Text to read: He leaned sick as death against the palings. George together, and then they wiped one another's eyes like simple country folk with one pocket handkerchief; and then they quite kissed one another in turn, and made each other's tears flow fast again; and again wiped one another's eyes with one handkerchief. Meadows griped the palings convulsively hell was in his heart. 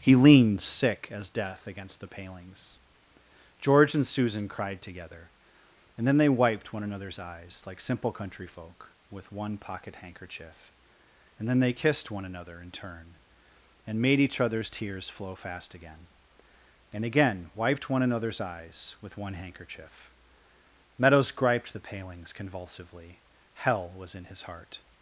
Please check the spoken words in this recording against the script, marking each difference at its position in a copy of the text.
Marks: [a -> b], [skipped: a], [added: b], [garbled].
He leaned sick as death against the palings. George [added: and Susan cried] together, and then they wiped one another's eyes like simple country folk with one pocket handkerchief; and then they [skipped: quite] kissed one another in turn, and made each other's tears flow fast again; and again wiped one another's eyes with one handkerchief. Meadows griped the palings convulsively hell was in his heart.